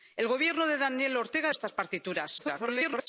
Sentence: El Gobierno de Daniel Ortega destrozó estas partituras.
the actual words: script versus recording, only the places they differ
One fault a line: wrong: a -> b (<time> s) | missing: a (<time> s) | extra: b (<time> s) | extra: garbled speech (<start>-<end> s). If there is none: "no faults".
missing: destrozó (1.5 s)
extra: garbled speech (2.4-3.1 s)